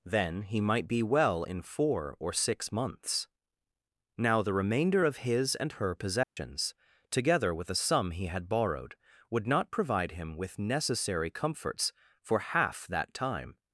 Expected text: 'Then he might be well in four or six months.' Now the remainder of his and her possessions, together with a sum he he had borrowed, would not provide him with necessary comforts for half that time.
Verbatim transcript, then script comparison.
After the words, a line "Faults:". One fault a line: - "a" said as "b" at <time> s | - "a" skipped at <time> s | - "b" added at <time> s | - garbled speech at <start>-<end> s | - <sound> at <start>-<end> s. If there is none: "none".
'Then he might be well in four or six months.' Now the remainder of his and her possessions, together with a sum he had borrowed, would not provide him with necessary comforts for half that time.
Faults:
- dropout at 6.2-6.4 s
- "he" skipped at 8.2 s